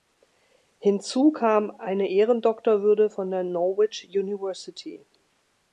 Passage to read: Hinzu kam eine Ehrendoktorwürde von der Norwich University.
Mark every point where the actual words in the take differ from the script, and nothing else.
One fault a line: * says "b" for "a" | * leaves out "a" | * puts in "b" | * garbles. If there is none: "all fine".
all fine